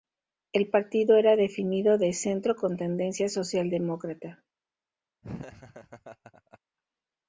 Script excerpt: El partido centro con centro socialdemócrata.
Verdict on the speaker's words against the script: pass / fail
fail